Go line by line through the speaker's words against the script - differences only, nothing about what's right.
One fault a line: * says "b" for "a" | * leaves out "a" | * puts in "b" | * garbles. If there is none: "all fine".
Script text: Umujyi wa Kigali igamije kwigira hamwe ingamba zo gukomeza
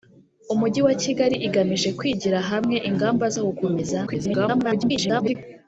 * garbles